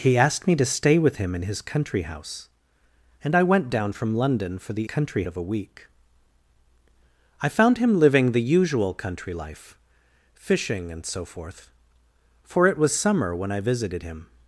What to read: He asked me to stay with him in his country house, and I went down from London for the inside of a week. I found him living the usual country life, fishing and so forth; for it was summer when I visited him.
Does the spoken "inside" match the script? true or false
false